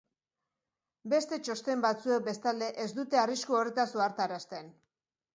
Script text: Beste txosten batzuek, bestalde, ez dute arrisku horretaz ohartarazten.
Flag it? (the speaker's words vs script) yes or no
no